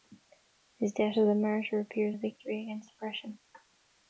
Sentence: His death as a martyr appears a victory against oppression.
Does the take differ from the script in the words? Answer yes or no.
no